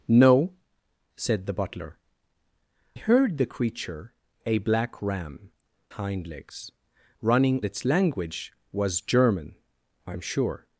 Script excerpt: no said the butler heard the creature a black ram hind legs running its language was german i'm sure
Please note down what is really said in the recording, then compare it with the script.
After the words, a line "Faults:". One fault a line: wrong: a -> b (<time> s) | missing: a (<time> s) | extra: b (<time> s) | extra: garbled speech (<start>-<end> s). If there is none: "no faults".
no said the butler heard the creature a black ram hind legs running its language was german i'm sure
Faults:
no faults